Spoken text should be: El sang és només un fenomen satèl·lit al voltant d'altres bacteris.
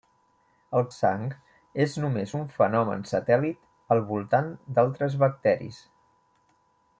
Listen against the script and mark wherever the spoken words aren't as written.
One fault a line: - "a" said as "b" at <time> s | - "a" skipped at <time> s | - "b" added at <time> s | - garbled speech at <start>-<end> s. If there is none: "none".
none